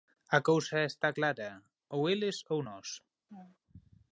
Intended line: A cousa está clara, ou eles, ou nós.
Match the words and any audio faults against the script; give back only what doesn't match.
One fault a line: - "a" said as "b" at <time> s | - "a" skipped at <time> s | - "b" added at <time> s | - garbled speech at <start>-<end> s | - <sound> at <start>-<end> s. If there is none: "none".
- laugh at 3.3-3.6 s